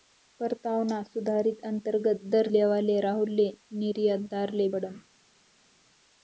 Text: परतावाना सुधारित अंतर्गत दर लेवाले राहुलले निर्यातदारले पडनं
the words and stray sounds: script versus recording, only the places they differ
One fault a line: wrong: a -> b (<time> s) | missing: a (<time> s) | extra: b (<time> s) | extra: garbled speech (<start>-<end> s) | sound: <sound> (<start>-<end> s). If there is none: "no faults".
no faults